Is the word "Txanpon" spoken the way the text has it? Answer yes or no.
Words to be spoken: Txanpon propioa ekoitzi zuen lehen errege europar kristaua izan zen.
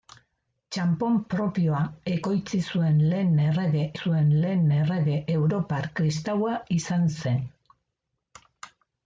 yes